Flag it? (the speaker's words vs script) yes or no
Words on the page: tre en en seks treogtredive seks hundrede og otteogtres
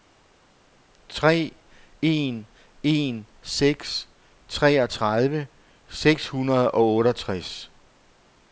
no